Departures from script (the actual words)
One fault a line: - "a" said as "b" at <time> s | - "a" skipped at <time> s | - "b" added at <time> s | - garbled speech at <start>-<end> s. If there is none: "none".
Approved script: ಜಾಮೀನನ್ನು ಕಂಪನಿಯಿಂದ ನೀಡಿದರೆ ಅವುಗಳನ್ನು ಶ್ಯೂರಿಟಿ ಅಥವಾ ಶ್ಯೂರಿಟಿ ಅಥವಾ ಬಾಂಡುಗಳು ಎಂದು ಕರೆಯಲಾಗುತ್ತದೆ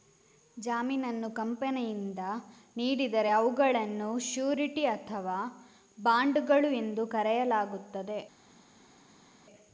- "ಶ್ಯೂರಿಟಿ ಅಥವಾ" skipped at 5.4 s